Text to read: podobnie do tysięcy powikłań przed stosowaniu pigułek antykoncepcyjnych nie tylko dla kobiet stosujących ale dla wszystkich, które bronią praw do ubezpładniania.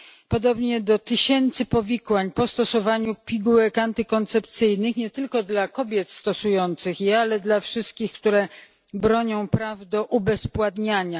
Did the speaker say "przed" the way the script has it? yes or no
no